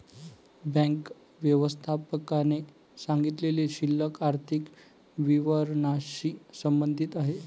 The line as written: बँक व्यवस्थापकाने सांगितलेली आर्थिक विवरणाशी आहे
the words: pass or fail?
fail